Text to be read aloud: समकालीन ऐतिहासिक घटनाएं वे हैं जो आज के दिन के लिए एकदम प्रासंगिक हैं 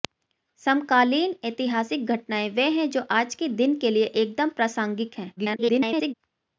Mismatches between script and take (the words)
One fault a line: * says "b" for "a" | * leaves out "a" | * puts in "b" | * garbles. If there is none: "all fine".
* garbles